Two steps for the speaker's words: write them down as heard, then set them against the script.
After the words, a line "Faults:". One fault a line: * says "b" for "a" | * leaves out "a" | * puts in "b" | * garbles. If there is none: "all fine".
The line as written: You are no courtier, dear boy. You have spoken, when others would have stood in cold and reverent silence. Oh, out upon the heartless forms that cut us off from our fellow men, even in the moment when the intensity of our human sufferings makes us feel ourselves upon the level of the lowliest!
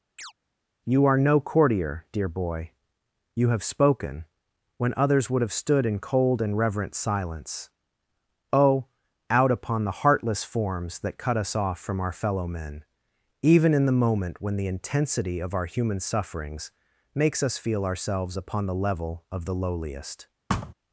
You are no courtier, dear boy. You have spoken, when others would have stood in cold and reverent silence. Oh, out upon the heartless forms that cut us off from our fellow men, even in the moment when the intensity of our human sufferings makes us feel ourselves upon the level of the lowliest!
Faults:
all fine